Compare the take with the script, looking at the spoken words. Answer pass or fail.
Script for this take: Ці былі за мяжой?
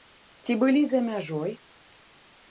pass